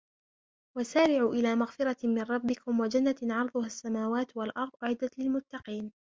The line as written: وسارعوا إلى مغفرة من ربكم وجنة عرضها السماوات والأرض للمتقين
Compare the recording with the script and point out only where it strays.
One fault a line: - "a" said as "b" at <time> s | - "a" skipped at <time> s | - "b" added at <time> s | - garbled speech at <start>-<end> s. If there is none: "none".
- "أعدت" added at 4.8 s